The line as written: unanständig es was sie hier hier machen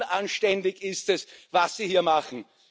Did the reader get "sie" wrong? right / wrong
right